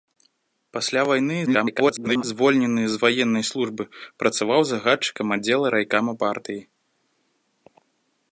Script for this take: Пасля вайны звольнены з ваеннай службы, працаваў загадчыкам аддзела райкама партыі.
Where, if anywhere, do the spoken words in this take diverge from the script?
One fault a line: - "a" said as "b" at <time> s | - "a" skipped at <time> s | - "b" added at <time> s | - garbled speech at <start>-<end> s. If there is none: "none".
- garbled speech at 1.5-2.2 s